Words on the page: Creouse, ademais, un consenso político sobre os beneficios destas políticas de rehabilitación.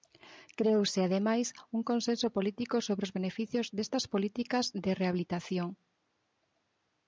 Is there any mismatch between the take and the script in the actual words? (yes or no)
no